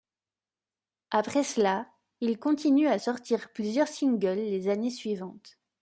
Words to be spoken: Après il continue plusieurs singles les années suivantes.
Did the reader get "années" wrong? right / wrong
right